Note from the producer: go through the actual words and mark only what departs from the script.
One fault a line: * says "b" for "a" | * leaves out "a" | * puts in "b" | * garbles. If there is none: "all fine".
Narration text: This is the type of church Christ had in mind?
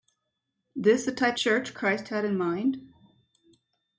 * leaves out "is"
* leaves out "of"